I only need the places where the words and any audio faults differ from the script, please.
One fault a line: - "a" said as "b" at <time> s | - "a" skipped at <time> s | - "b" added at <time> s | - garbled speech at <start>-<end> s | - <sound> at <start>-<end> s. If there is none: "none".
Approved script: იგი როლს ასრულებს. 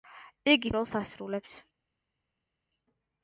none